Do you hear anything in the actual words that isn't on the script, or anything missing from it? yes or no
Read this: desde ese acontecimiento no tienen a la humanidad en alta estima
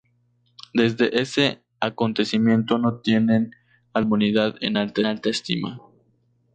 yes